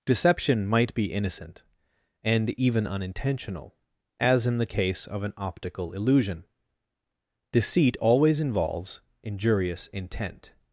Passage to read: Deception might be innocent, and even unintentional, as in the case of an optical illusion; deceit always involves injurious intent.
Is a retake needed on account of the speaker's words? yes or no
no